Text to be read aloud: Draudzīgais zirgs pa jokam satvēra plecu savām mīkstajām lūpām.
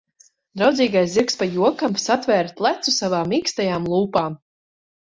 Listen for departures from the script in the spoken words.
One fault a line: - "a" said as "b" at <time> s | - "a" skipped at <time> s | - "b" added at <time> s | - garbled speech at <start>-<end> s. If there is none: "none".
none